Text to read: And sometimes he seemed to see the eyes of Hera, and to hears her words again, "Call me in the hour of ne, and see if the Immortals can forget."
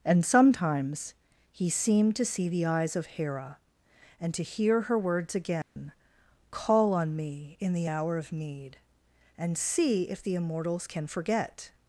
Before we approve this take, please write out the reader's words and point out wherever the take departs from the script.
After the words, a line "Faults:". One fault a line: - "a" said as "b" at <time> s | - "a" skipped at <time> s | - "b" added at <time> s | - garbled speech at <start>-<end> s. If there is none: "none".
And sometimes he seemed to see the eyes of Hera, and to hear her words again, "Call on me in the hour of need, and see if the Immortals can forget."
Faults:
- "hears" said as "hear" at 4.4 s
- "on" added at 6.9 s
- "ne" said as "need" at 8.3 s